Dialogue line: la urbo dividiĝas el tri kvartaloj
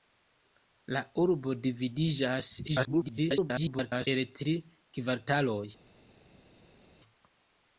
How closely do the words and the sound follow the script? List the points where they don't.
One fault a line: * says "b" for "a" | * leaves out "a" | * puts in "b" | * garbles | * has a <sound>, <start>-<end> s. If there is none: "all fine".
* garbles